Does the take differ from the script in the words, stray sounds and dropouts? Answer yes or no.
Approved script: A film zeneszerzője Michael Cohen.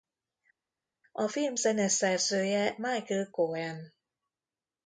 no